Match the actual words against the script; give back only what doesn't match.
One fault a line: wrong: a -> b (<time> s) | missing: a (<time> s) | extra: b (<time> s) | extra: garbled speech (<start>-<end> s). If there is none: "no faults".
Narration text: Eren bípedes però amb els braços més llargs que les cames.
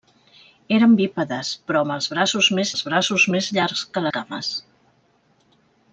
extra: els braços més (2.7 s)
missing: les (4.1 s)